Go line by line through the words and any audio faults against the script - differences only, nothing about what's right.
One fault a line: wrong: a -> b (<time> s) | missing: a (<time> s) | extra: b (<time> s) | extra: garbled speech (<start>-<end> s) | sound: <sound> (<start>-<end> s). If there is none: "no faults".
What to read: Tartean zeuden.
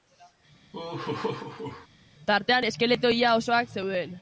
sound: laugh (0.7-1.9 s)
extra: eskeleto ia osoak (2.6 s)